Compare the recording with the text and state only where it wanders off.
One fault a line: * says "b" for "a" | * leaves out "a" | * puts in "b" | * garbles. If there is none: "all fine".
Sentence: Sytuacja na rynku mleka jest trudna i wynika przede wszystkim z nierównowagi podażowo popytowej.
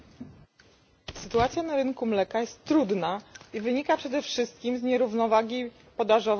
all fine